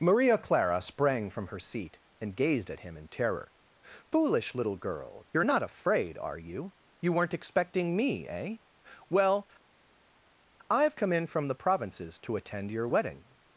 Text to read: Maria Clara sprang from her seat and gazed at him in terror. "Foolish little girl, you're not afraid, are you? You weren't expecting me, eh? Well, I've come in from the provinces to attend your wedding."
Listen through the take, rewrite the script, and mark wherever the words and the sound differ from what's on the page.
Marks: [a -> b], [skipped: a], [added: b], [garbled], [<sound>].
Maria Clara sprang from her seat and gazed at him in terror. "Foolish little girl, you're not afraid, are you? You weren't expecting me, eh? Well, I've come in from the provinces to attend your wedding."